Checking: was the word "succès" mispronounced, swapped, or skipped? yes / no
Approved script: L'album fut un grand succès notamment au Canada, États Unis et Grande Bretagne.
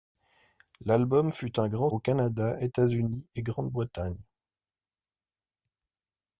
yes